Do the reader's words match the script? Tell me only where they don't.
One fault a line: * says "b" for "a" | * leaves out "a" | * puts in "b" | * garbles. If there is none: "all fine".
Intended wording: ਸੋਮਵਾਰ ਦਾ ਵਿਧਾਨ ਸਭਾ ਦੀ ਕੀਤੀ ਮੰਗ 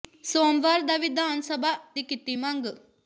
all fine